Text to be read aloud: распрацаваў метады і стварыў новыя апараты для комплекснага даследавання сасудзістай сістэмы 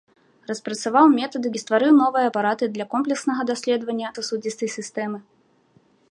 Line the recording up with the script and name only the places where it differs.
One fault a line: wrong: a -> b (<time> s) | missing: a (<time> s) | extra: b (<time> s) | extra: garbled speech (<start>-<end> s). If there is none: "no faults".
no faults